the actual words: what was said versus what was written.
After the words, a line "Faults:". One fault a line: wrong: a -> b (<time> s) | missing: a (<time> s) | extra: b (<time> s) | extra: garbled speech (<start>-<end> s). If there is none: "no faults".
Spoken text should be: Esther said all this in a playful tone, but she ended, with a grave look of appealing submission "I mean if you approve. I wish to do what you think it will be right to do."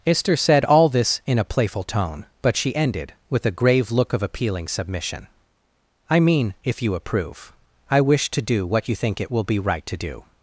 Esther said all this in a playful tone, but she ended, with a grave look of appealing submission "I mean if you approve. I wish to do what you think it will be right to do."
Faults:
no faults